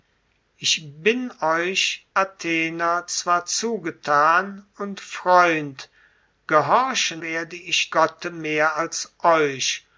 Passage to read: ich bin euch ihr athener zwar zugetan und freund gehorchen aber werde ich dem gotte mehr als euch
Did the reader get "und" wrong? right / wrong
right